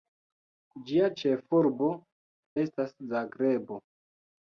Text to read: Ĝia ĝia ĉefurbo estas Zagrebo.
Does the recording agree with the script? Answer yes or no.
no